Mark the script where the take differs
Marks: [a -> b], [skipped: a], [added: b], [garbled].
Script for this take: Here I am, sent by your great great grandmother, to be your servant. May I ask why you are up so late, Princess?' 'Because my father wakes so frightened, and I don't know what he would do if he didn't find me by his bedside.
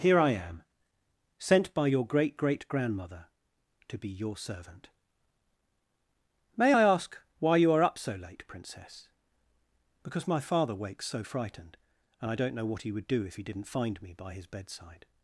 Here I am, sent by your great great grandmother, to be your servant. May I ask why you are up so late, Princess?' 'Because my father wakes so frightened, and I don't know what he would do if he didn't find me by his bedside.